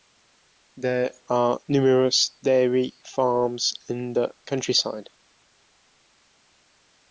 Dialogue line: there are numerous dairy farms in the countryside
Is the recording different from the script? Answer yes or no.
no